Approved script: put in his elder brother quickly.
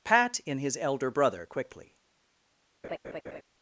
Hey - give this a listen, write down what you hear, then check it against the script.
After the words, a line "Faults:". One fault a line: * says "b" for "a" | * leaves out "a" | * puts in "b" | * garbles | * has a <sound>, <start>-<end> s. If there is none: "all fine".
pat in his elder brother quickly.
Faults:
* says "pat" for "put"
* has a laugh, 2.8-3.4 s